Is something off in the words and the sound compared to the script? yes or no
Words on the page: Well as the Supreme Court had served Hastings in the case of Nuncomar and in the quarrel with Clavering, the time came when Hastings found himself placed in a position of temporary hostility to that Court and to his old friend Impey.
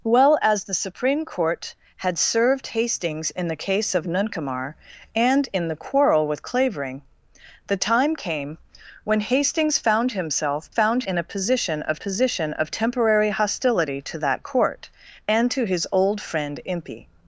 yes